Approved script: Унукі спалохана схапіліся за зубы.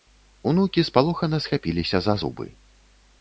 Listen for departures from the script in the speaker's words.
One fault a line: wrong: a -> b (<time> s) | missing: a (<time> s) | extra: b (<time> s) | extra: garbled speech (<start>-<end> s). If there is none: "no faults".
no faults